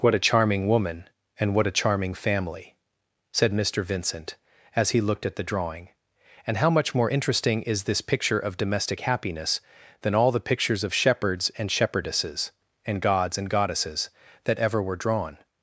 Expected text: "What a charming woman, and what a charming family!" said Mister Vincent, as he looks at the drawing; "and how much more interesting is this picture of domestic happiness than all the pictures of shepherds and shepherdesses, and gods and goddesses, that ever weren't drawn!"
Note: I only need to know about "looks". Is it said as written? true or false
false